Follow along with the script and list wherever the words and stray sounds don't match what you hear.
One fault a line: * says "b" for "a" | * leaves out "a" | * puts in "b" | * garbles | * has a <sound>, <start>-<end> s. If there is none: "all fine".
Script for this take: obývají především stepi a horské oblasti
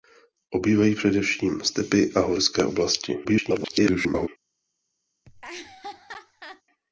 * garbles
* has a laugh, 5.2-6.6 s